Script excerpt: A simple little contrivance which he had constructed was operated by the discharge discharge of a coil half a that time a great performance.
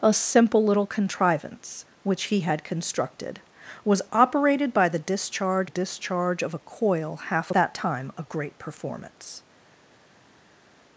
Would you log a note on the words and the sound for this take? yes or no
no